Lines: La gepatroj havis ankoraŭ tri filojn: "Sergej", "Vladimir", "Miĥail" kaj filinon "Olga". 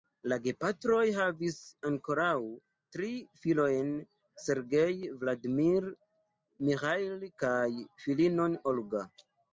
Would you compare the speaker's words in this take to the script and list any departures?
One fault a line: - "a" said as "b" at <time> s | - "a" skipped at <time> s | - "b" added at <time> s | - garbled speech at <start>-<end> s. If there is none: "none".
none